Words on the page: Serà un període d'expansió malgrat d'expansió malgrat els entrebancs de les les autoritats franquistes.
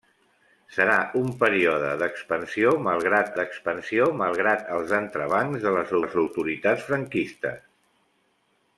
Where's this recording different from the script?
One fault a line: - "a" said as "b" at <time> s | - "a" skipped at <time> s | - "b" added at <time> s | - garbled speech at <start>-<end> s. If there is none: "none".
none